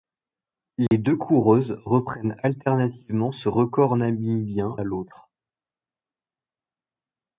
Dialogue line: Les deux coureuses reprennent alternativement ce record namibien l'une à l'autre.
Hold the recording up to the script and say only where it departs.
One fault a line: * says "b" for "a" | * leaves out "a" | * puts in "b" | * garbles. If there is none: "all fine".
* leaves out "l'une"